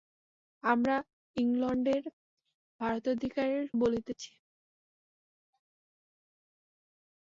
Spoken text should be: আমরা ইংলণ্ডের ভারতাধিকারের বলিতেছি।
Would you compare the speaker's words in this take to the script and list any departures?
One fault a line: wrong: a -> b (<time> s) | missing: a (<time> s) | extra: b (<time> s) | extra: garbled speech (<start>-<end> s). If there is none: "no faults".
no faults